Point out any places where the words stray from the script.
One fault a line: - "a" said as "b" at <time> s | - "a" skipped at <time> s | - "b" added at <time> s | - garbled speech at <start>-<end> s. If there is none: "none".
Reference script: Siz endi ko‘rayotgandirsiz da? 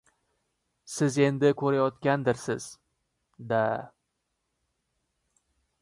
none